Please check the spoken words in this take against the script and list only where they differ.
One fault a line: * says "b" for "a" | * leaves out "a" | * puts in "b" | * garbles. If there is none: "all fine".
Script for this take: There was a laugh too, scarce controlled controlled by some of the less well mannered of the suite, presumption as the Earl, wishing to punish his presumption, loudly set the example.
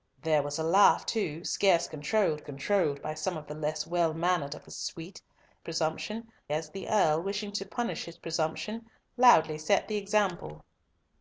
all fine